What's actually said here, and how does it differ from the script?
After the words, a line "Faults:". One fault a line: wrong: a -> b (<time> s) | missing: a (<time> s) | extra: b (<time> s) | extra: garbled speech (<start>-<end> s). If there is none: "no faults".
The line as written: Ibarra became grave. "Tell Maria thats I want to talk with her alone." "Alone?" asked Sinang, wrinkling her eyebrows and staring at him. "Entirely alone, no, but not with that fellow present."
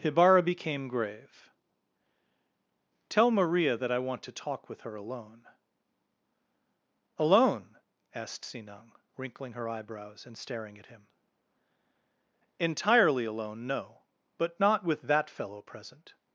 Ibarra became grave. "Tell Maria that I want to talk with her alone." "Alone?" asked Sinang, wrinkling her eyebrows and staring at him. "Entirely alone, no, but not with that fellow present."
Faults:
wrong: thats -> that (3.8 s)